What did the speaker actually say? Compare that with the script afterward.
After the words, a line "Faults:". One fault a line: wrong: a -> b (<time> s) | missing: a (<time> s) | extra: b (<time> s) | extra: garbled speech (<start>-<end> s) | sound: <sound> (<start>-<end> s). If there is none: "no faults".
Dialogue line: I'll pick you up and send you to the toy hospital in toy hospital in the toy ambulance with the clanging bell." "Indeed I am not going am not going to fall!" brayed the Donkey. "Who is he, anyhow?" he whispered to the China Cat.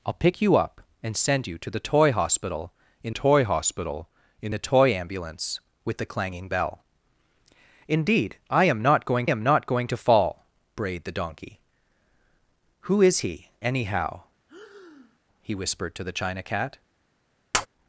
I'll pick you up and send you to the toy hospital in toy hospital in the toy ambulance with the clanging bell." "Indeed I am not going am not going to fall!" brayed the Donkey. "Who is he, anyhow?" he whispered to the China Cat.
Faults:
sound: breath (14.5-15.2 s)
sound: tap (17.5-17.7 s)